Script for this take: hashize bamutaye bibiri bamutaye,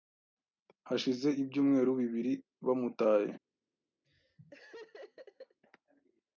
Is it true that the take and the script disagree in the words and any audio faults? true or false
true